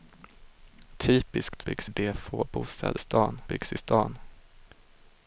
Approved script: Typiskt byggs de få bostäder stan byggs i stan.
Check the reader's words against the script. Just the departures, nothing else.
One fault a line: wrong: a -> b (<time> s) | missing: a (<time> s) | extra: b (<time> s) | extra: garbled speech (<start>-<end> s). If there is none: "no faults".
no faults